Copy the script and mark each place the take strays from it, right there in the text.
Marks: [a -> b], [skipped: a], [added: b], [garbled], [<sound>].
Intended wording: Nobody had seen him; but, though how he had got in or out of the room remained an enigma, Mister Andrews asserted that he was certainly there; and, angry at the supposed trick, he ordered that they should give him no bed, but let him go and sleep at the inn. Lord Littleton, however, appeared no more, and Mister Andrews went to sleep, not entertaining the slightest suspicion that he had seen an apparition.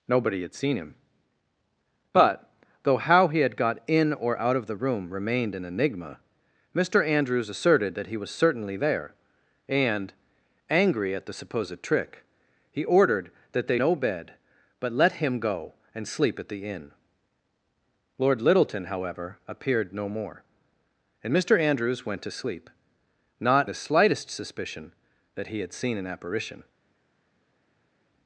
Nobody had seen him; but, though how he had got in or out of the room remained an enigma, Mister Andrews asserted that he was certainly there; and, angry at the supposed trick, he ordered that they [skipped: should give him] no bed, but let him go and sleep at the inn. Lord Littleton, however, appeared no more, and Mister Andrews went to sleep, not [skipped: entertaining] the slightest suspicion that he had seen an apparition.